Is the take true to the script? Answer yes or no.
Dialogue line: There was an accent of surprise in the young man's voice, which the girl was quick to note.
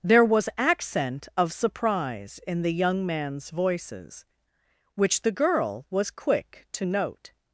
no